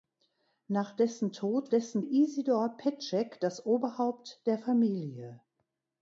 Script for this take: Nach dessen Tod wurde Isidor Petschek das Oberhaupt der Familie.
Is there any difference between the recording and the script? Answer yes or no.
yes